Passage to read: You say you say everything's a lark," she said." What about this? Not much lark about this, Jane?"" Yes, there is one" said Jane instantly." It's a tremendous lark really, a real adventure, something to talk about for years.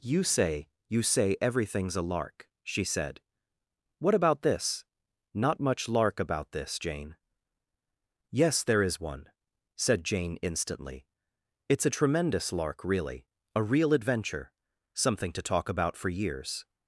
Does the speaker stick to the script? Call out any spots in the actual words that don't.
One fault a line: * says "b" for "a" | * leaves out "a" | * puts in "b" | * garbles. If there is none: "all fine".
all fine